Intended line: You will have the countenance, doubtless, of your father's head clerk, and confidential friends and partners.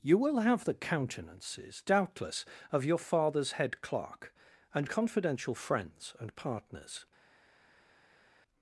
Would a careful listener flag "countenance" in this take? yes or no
yes